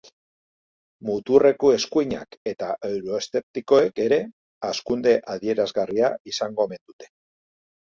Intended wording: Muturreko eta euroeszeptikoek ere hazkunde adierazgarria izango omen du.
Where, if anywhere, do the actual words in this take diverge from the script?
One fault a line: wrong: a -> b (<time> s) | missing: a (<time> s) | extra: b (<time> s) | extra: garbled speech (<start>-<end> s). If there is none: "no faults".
extra: eskuinak (1.8 s)
wrong: du -> dute (6.9 s)